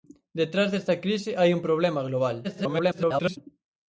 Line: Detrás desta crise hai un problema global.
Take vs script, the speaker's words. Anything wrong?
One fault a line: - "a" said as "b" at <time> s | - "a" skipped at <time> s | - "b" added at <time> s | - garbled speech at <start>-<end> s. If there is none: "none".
- garbled speech at 2.4-3.4 s